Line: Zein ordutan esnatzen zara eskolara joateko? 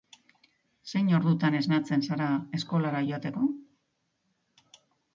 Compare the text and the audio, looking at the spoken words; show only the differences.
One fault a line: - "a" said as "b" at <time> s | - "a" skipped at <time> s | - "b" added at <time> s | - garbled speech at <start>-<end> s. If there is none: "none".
none